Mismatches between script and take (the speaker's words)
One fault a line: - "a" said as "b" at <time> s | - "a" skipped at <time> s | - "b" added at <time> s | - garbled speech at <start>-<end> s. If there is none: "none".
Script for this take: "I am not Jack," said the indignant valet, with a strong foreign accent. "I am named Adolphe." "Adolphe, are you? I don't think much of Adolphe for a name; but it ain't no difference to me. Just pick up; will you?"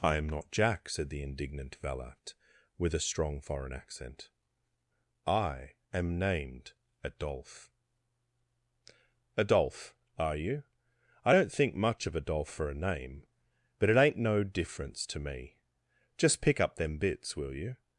- "them bits" added at 16.7 s